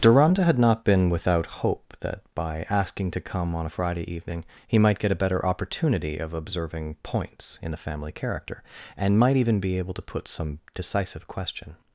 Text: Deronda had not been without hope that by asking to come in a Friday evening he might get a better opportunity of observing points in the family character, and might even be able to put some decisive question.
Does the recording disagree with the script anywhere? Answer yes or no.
yes